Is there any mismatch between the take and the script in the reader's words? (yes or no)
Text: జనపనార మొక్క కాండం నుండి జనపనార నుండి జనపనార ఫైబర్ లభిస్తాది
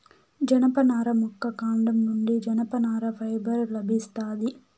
yes